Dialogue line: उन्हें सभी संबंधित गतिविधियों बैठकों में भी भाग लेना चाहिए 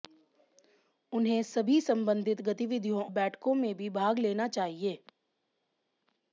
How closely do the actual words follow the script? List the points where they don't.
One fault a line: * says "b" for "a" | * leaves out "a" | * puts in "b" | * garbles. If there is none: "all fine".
all fine